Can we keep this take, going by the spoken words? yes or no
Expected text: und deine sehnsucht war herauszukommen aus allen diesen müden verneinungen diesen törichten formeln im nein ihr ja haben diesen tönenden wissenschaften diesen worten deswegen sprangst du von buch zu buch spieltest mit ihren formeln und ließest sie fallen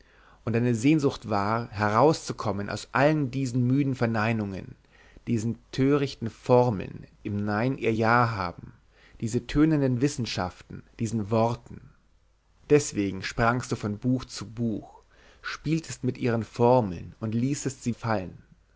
yes